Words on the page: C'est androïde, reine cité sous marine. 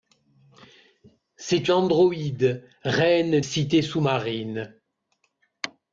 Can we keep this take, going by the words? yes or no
yes